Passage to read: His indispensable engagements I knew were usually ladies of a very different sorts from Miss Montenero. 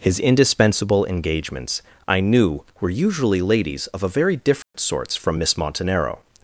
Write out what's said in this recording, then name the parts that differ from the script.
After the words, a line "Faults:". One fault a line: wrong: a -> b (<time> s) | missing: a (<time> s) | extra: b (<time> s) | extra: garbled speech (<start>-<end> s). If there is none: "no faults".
His indispensable engagements I knew were usually ladies of a very different sorts from Miss Montenero.
Faults:
no faults